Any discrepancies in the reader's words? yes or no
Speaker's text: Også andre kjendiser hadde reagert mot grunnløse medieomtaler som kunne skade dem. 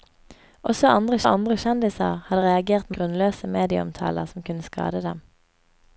yes